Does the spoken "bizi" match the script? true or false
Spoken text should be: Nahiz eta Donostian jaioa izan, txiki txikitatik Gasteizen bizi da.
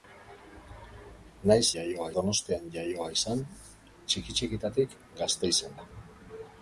false